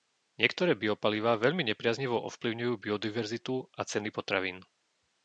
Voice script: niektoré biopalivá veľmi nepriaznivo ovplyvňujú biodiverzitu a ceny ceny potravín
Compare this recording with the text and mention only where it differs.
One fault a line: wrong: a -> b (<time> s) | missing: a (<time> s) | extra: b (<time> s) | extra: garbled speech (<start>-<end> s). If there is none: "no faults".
missing: ceny (4.1 s)